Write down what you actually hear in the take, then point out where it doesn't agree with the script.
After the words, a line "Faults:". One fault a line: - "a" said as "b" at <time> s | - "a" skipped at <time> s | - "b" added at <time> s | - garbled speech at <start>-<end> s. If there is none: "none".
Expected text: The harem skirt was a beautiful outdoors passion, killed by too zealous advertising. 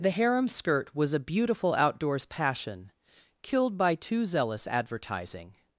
The harem skirt was a beautiful outdoors passion, killed by too zealous advertising.
Faults:
none